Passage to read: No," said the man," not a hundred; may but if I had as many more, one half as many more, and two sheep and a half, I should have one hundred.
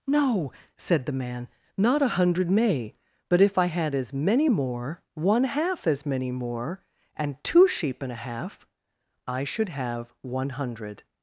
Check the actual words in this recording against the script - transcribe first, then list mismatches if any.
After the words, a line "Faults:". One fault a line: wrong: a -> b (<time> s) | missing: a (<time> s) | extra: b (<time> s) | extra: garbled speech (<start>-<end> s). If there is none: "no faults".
No," said the man," not a hundred; may but if I had as many more, one half as many more, and two sheep and a half, I should have one hundred.
Faults:
no faults